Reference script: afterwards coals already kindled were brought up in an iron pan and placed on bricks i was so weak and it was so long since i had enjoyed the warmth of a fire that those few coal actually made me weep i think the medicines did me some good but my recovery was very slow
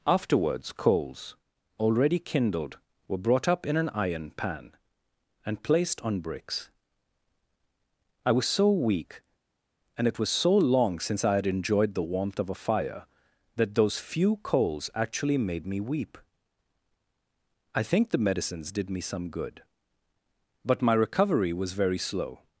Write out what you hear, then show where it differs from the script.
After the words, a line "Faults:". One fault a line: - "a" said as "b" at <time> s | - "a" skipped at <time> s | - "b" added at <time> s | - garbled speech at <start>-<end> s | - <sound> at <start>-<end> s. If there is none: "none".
afterwards coals already kindled were brought up in an iron pan and placed on bricks i was so weak and it was so long since i had enjoyed the warmth of a fire that those few coals actually made me weep i think the medicines did me some good but my recovery was very slow
Faults:
- "coal" said as "coals" at 14.4 s